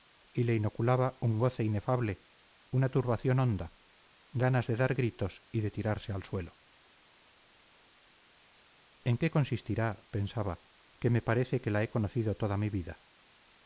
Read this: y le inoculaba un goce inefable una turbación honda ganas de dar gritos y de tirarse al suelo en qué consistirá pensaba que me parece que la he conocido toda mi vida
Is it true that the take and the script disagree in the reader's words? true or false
false